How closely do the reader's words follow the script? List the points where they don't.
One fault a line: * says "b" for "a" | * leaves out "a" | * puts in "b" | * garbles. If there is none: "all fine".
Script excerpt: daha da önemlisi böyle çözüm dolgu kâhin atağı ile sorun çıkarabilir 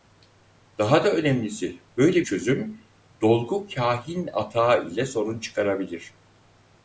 all fine